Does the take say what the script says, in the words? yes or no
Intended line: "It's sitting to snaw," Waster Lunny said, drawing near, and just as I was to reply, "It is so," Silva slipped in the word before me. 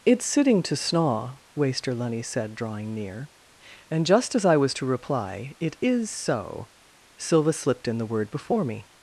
yes